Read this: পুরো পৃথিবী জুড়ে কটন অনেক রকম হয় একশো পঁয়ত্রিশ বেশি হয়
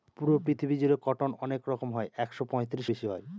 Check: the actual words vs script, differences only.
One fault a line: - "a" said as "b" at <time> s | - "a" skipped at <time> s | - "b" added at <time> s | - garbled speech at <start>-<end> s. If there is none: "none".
none